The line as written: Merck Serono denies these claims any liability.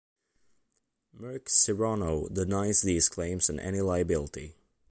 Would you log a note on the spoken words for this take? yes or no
yes